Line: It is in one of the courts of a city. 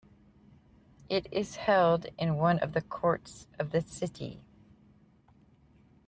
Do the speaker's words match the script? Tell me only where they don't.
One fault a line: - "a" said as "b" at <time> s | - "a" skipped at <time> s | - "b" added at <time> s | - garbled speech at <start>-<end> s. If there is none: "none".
- "held" added at 1.6 s
- "a" said as "the" at 3.7 s